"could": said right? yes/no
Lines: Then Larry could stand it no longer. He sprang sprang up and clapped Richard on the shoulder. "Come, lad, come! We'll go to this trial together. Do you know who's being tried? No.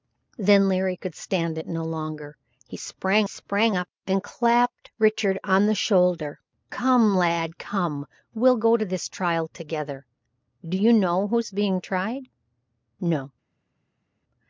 yes